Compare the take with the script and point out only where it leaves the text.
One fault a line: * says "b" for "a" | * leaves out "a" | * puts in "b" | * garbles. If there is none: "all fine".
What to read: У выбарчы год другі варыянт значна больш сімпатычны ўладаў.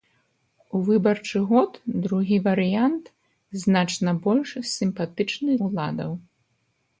all fine